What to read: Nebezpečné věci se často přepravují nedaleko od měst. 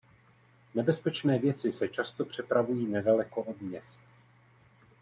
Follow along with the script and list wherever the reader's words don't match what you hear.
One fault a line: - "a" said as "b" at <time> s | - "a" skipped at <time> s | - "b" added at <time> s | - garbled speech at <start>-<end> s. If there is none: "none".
none